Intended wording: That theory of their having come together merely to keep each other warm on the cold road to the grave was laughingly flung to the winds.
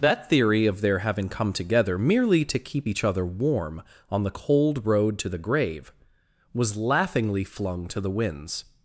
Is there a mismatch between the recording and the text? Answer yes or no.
no